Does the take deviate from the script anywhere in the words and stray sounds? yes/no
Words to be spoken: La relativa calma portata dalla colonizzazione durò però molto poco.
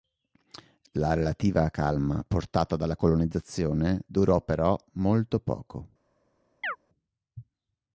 yes